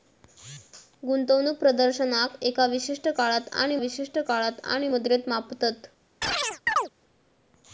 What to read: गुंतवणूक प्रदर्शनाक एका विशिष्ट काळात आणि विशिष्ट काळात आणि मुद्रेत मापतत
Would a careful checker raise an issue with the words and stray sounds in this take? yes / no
yes